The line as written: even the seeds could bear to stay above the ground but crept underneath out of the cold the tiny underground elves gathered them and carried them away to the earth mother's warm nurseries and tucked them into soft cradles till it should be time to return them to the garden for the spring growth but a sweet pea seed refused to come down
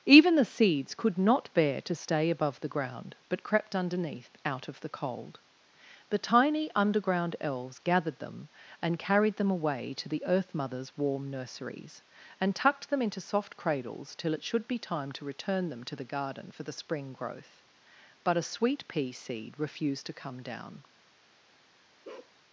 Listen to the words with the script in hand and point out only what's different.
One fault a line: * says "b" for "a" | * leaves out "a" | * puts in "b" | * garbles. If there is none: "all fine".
* puts in "not"